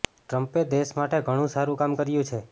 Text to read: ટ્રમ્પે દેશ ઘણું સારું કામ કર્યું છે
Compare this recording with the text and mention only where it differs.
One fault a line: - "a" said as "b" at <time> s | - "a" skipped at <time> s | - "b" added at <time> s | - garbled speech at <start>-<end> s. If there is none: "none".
- "માટે" added at 0.9 s